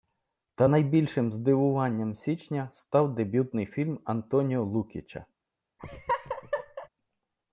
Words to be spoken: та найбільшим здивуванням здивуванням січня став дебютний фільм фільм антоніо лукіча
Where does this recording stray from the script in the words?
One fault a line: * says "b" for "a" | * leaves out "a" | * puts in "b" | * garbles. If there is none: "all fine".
* leaves out "здивуванням"
* leaves out "фільм"